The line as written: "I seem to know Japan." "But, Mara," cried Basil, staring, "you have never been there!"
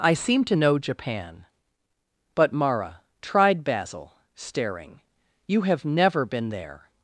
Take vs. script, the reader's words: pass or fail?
fail